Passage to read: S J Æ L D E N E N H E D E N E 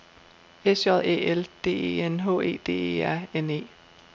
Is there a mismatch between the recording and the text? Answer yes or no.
yes